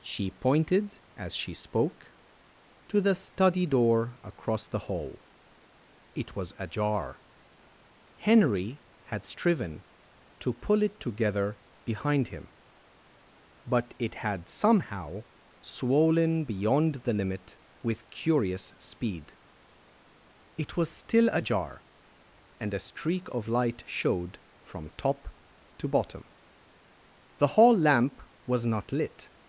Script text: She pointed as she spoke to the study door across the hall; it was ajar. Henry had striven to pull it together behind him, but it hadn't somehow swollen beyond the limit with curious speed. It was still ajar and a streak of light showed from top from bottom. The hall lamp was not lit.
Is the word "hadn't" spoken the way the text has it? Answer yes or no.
no